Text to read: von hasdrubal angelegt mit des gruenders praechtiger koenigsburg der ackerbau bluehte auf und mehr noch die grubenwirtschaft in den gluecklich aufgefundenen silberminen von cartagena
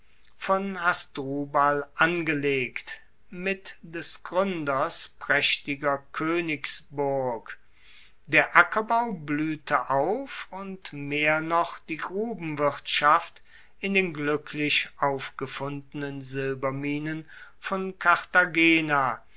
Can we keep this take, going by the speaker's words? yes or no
yes